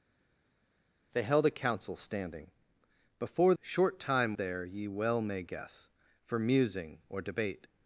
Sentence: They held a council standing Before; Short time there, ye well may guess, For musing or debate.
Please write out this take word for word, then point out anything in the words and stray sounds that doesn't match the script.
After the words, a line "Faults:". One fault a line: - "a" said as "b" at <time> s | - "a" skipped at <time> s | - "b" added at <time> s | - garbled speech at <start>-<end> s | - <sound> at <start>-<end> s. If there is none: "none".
They held a council standing Before; Short time there, ye well may guess, For musing or debate.
Faults:
none